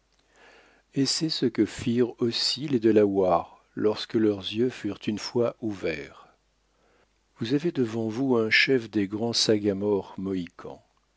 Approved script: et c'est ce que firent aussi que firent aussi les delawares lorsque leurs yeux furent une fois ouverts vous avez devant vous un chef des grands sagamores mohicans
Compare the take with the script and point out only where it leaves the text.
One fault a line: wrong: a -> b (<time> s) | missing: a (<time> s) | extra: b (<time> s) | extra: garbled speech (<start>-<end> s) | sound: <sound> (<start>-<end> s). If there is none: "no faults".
missing: que firent aussi (2.7 s)